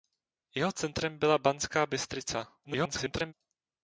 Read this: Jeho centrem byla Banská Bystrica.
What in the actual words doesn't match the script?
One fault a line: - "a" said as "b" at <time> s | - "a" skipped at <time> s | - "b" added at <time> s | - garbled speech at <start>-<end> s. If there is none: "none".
- garbled speech at 2.6-3.3 s